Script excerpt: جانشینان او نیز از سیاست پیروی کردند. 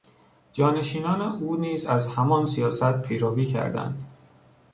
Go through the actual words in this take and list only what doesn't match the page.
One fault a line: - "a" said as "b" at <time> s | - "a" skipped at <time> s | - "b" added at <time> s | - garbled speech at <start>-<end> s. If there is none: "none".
- "همان" added at 2.1 s